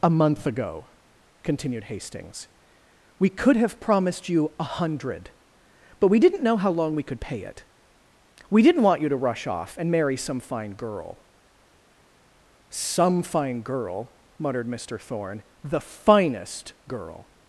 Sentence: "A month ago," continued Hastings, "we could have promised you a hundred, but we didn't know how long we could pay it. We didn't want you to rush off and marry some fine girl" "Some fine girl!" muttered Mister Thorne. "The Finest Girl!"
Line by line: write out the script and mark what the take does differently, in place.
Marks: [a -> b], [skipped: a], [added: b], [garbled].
"A month ago," continued Hastings, "we could have promised you a hundred, but we didn't know how long we could pay it. We didn't want you to rush off and marry some fine girl" "Some fine girl!" muttered Mister Thorne. "The Finest Girl!"